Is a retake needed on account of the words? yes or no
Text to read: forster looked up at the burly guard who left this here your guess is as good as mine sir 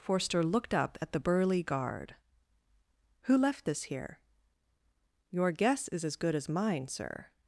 no